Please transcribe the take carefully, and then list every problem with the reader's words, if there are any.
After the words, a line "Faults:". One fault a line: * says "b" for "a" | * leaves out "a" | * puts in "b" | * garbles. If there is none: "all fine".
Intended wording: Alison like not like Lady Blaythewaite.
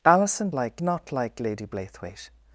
Alison like not like Lady Blaythewaite.
Faults:
all fine